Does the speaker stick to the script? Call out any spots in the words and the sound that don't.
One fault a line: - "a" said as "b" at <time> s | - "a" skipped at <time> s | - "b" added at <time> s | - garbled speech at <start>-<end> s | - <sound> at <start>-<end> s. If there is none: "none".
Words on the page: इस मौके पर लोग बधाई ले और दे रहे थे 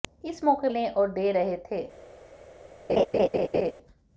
- "पर लोग बधाई" skipped at 0.7 s
- laugh at 2.9-3.7 s